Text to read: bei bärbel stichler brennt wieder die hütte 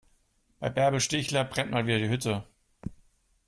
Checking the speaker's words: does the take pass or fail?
fail